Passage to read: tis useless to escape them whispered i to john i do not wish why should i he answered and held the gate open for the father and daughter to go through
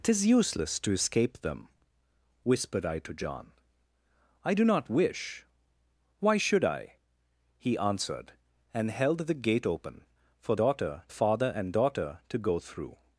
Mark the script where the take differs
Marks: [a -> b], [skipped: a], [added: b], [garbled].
tis useless to escape them whispered i to john i do not wish why should i he answered and held the gate open for [the -> daughter] father and daughter to go through